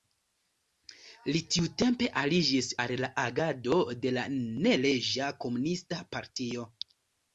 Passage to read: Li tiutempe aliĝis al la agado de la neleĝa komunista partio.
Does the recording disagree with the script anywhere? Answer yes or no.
no